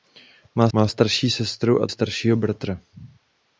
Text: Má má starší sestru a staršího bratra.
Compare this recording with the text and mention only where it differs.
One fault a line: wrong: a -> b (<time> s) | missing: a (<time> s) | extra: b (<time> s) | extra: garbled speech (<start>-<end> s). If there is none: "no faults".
no faults